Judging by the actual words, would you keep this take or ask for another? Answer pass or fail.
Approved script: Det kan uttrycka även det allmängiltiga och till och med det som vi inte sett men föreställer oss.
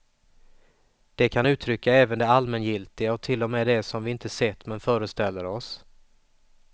pass